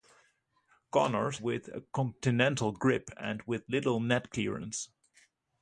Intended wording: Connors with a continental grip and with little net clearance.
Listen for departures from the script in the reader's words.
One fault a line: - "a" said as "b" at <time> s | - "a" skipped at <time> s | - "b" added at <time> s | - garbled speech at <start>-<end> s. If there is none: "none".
none